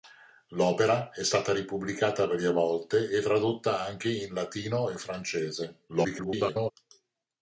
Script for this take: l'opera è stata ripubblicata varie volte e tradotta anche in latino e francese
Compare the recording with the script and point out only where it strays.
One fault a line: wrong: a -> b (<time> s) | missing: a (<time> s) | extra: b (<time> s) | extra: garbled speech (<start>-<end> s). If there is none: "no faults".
extra: garbled speech (5.9-6.7 s)